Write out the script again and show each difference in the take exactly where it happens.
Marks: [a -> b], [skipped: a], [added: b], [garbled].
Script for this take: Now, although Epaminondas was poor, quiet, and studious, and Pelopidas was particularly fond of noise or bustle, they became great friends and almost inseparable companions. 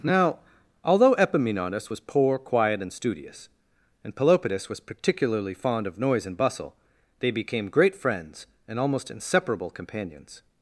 Now, although Epaminondas was poor, quiet, and studious, and Pelopidas was particularly fond of noise [or -> and] bustle, they became great friends and almost inseparable companions.